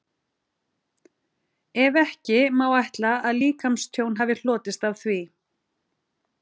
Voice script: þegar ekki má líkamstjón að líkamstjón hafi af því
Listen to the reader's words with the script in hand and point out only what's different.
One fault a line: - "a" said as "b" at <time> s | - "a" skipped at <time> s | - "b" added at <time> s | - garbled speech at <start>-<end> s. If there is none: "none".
- "þegar" said as "ef" at 1.8 s
- "líkamstjón" said as "ætla" at 2.8 s
- "hlotist" added at 4.4 s